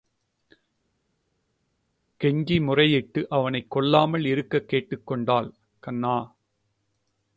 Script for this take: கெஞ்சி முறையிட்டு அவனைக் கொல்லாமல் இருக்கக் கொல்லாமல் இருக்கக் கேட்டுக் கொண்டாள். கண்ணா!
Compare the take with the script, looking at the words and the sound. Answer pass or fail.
fail